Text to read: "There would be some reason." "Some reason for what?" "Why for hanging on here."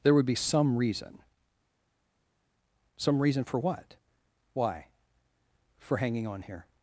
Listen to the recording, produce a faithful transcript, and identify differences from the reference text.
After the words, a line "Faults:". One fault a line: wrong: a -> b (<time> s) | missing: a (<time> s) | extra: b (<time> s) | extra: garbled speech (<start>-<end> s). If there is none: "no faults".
"There would be some reason." "Some reason for what?" "Why for hanging on here."
Faults:
no faults